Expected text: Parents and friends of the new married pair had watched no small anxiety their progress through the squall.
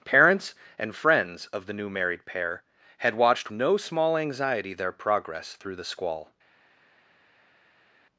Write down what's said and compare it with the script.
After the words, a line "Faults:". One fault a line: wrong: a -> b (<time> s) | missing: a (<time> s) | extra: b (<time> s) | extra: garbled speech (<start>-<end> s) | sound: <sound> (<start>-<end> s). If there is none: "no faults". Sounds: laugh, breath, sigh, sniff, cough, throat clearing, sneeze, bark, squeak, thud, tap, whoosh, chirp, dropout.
Parents and friends of the new married pair had watched no small anxiety their progress through the squall.
Faults:
no faults